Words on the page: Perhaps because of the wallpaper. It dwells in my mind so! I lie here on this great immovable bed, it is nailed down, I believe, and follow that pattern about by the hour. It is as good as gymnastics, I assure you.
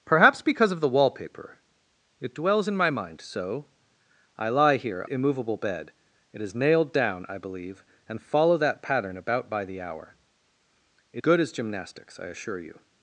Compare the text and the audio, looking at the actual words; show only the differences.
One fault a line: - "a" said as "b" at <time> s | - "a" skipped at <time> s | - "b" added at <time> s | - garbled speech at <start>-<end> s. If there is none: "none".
- "on this great" skipped at 5.0 s
- "is as" skipped at 11.2 s